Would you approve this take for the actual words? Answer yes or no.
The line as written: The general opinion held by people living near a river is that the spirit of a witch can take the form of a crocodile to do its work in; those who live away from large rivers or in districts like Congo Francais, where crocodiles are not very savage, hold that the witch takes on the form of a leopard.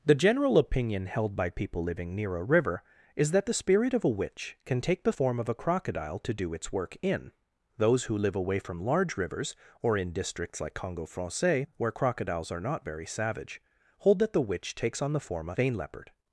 no